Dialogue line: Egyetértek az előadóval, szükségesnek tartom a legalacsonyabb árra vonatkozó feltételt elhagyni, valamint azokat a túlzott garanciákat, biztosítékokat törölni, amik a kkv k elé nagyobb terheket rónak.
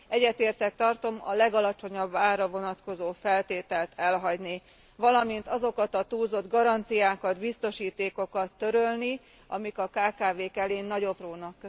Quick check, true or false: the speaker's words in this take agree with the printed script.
false